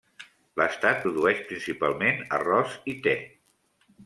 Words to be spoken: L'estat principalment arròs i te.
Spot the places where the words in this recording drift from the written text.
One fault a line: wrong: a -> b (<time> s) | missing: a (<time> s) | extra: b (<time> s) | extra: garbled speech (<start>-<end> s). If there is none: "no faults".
extra: produeix (1.0 s)